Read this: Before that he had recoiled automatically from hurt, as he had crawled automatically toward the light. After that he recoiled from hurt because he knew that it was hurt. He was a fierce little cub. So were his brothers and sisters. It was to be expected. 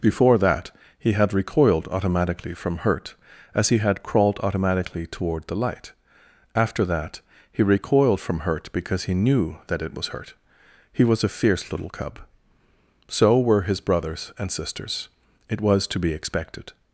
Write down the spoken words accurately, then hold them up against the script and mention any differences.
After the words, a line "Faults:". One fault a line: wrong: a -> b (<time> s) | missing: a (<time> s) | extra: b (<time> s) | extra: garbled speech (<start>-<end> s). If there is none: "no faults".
Before that he had recoiled automatically from hurt, as he had crawled automatically toward the light. After that he recoiled from hurt because he knew that it was hurt. He was a fierce little cub. So were his brothers and sisters. It was to be expected.
Faults:
no faults